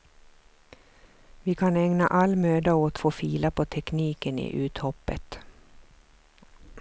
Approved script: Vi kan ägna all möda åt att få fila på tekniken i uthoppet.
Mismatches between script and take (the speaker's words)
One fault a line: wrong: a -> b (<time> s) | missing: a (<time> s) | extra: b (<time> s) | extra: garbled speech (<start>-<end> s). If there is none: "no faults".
missing: att (3.0 s)